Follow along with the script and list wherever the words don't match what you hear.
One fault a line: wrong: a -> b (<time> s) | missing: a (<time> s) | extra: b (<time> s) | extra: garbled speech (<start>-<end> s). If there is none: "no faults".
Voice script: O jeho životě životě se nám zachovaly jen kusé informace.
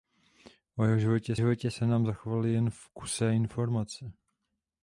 no faults